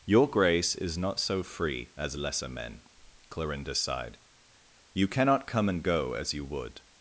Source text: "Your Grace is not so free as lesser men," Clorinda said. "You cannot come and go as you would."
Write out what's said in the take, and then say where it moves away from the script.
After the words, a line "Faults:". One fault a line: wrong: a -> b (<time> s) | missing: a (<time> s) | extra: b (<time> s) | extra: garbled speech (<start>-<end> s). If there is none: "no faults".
"Your Grace is not so free as lesser men," Clorinda sighed. "You cannot come and go as you would."
Faults:
wrong: said -> sighed (3.8 s)